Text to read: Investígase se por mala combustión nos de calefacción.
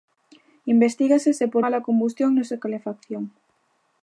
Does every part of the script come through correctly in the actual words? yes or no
yes